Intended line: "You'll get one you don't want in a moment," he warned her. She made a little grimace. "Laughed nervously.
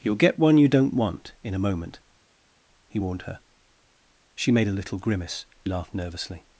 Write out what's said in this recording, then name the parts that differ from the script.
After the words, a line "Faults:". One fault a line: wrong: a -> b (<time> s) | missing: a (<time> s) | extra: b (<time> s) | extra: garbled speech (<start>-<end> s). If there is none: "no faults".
"You'll get one you don't want in a moment," he warned her. She made a little grimace. "Laughed nervously.
Faults:
no faults